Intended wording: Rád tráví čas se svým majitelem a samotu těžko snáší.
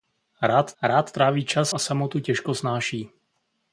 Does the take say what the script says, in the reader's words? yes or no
no